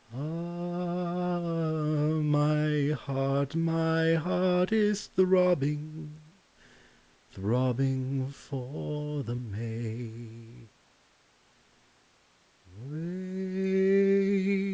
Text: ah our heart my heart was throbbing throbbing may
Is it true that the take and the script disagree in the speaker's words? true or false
true